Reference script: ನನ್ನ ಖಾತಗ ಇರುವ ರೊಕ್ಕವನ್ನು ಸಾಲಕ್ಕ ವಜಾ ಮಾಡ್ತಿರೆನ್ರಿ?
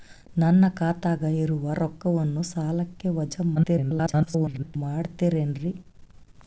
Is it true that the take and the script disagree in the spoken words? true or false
true